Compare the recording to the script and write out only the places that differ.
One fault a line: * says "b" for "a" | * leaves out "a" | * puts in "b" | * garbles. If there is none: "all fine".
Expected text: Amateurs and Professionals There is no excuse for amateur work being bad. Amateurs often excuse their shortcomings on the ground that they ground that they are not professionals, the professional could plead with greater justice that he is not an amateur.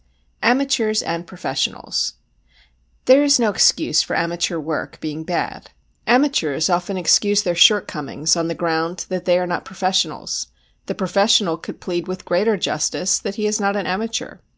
* leaves out "ground that they"